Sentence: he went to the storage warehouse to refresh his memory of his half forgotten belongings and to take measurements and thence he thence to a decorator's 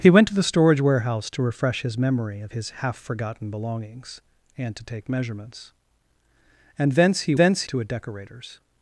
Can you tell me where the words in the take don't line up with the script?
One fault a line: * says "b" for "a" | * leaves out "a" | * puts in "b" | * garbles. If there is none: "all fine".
all fine